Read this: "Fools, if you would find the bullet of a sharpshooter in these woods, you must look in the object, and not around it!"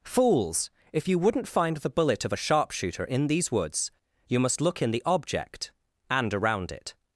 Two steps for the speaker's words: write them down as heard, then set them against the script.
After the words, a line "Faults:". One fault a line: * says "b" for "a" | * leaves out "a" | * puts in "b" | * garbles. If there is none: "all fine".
"Fools, if you wouldn't find the bullet of a sharpshooter in these woods, you must look in the object, and around it!"
Faults:
* says "wouldn't" for "would"
* leaves out "not"